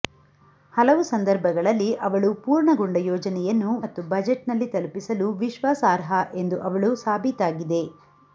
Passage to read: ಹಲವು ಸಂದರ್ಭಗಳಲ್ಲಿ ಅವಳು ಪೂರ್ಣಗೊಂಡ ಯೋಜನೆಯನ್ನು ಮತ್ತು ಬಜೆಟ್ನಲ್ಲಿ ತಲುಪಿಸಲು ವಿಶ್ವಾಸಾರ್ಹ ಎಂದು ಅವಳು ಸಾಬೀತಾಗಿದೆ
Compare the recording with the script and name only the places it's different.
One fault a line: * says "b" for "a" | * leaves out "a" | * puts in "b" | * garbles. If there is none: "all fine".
all fine